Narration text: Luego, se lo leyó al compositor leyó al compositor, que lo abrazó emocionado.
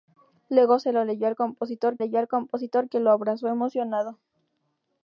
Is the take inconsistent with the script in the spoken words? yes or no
no